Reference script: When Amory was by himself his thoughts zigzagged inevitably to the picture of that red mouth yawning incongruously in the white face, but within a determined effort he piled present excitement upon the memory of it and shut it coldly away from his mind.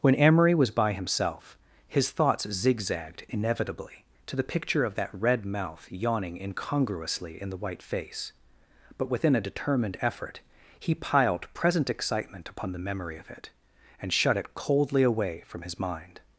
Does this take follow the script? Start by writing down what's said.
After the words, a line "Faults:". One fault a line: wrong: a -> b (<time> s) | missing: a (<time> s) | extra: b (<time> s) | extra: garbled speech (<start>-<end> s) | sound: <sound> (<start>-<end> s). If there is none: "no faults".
When Amory was by himself his thoughts zigzagged inevitably to the picture of that red mouth yawning incongruously in the white face, but within a determined effort he piled present excitement upon the memory of it and shut it coldly away from his mind.
Faults:
no faults